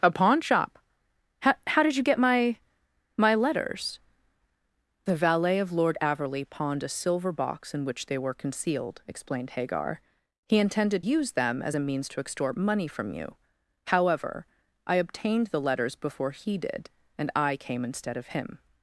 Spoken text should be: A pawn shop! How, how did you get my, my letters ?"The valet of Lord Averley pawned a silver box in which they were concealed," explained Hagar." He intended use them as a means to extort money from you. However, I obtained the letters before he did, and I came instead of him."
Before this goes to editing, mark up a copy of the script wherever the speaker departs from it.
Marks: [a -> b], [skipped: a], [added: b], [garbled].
A pawn shop! How, how did you get my, my letters ?"The valet of Lord Averley pawned a silver box in which they were concealed," explained Hagar." He intended use them as a means to extort money from you. However, I obtained the letters before he did, and I came instead of him."